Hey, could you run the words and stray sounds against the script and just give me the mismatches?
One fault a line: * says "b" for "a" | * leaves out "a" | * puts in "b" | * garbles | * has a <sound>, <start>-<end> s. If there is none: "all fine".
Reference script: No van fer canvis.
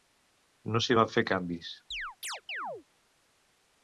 * puts in "s'hi"
* has a chirp, 1.9-2.8 s